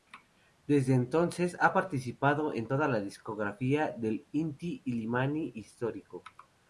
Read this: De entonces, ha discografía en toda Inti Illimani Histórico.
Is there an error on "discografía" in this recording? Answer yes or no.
yes